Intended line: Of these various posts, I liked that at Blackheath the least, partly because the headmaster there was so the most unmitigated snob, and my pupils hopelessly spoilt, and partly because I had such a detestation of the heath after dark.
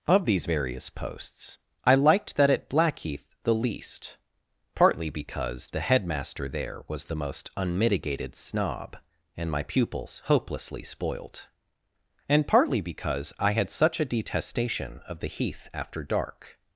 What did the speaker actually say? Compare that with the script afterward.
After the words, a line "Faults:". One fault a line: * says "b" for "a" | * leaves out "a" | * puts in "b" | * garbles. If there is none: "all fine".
Of these various posts, I liked that at Blackheath the least, partly because the headmaster there was the most unmitigated snob, and my pupils hopelessly spoilt, and partly because I had such a detestation of the heath after dark.
Faults:
* leaves out "so"